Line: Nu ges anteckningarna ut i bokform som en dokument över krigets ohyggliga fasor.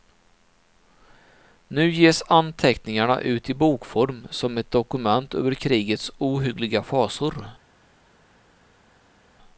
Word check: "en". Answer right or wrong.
wrong